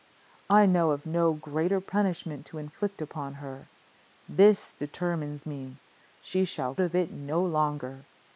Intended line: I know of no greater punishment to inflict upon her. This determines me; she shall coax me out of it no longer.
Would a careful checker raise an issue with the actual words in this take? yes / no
yes